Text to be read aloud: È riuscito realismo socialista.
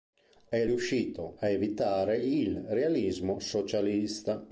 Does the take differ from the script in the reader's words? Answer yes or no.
yes